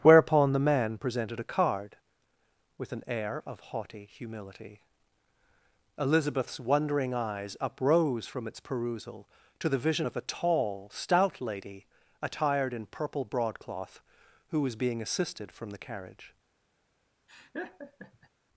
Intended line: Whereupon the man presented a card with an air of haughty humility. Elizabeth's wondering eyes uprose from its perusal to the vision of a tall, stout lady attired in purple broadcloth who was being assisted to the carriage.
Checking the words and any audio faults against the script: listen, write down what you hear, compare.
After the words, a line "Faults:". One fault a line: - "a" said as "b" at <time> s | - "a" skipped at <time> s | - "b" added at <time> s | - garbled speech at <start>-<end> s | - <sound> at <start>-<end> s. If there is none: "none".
Whereupon the man presented a card with an air of haughty humility. Elizabeth's wondering eyes uprose from its perusal to the vision of a tall, stout lady attired in purple broadcloth who was being assisted from the carriage.
Faults:
- "to" said as "from" at 15.5 s
- laugh at 17.3-18.3 s